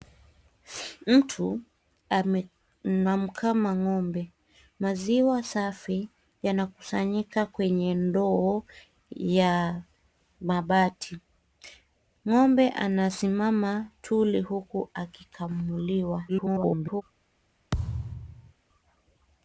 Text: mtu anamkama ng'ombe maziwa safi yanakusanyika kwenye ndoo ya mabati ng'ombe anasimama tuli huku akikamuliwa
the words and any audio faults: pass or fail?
fail